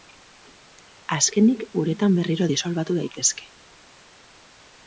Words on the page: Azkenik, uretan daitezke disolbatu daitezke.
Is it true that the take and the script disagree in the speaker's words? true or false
true